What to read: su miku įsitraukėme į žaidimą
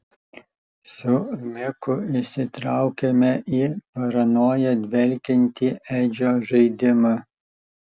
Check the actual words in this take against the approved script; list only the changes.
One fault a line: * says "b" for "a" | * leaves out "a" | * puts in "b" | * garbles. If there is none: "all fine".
* puts in "paranoja dvelkiantį edžio"